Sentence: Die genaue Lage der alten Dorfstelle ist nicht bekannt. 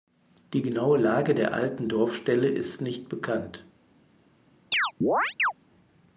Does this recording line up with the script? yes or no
yes